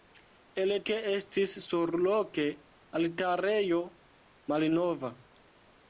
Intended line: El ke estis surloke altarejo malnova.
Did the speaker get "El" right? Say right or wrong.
right